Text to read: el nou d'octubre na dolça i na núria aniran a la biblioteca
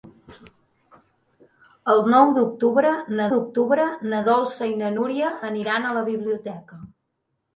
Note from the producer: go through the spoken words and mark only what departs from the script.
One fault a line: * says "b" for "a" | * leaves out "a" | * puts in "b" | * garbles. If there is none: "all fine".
* puts in "d'octubre na"